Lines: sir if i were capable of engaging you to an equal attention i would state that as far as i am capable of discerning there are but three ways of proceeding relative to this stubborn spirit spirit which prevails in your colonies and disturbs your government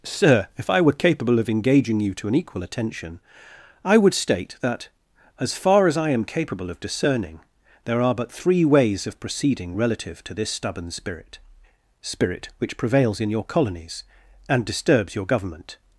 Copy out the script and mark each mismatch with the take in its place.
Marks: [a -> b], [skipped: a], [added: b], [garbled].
sir if i were capable of engaging you to an equal attention i would state that as far as i am capable of discerning there are but three ways of proceeding relative to this stubborn spirit spirit which prevails in your colonies and disturbs your government